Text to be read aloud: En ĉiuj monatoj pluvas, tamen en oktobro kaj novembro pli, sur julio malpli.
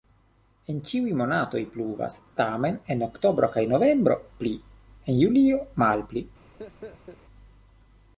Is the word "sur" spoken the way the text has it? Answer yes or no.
no